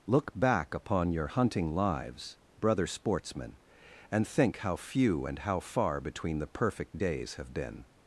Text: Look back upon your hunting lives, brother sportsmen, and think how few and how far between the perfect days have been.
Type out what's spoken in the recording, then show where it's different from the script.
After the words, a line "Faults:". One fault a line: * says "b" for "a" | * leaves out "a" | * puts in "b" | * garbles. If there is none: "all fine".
Look back upon your hunting lives, brother sportsmen, and think how few and how far between the perfect days have been.
Faults:
all fine